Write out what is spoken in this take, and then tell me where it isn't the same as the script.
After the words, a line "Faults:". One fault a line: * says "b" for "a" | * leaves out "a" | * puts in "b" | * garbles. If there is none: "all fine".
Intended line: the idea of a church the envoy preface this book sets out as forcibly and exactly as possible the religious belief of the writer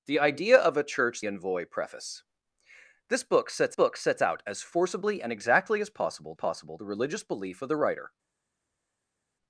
the idea of a church envoy preface this book sets book sets out as forcibly and exactly as possible possible the religious belief of the writer
Faults:
* leaves out "the"
* puts in "book sets"
* puts in "possible"